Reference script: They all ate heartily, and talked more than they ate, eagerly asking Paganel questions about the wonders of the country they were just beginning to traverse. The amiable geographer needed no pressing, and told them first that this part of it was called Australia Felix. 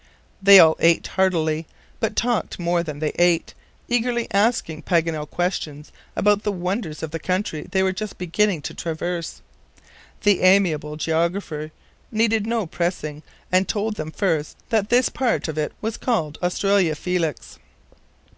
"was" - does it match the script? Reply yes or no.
yes